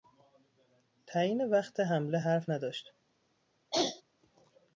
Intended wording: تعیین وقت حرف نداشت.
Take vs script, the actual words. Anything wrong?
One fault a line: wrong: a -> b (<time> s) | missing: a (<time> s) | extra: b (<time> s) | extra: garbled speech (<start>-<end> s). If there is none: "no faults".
extra: حمله (1.8 s)